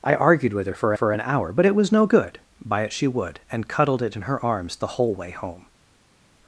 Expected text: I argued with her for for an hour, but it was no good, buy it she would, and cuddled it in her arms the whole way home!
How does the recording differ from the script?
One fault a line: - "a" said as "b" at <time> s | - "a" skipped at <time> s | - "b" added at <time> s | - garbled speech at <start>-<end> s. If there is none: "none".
none